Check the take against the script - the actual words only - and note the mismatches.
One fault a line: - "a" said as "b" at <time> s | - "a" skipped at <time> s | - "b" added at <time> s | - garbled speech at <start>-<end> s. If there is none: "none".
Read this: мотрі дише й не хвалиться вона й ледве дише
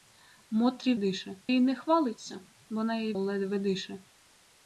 none